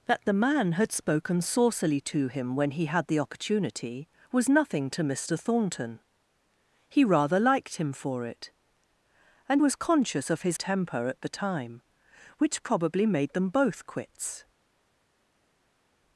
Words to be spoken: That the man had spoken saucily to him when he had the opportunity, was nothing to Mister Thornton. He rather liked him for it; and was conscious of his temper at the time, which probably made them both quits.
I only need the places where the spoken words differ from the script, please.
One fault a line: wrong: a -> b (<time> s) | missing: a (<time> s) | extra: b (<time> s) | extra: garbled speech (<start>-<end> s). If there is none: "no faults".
no faults